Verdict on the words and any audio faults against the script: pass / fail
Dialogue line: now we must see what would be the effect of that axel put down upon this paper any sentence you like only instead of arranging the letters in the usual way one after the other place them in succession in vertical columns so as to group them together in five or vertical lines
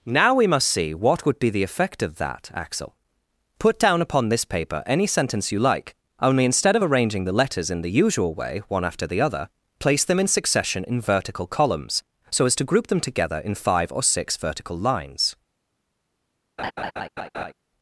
fail